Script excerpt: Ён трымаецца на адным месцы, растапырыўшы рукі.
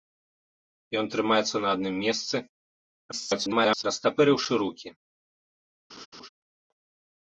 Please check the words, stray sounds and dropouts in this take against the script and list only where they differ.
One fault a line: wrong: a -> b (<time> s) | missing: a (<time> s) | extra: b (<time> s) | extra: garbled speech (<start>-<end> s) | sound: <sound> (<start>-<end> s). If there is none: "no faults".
extra: garbled speech (3.1-3.8 s)
sound: laugh (5.9-6.3 s)